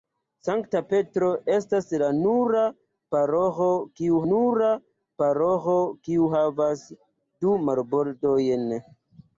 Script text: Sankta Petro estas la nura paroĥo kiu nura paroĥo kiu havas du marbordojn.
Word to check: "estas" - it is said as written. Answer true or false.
true